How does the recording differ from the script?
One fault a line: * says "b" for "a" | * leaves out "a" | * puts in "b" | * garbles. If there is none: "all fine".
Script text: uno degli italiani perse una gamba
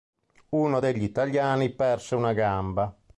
all fine